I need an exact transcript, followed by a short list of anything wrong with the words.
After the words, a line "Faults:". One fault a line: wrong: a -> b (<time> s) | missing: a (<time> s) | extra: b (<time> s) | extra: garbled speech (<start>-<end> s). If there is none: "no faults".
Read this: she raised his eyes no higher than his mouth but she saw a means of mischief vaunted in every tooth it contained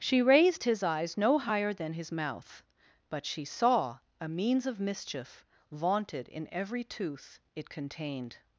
she raised his eyes no higher than his mouth but she saw a means of mischief vaunted in every tooth it contained
Faults:
no faults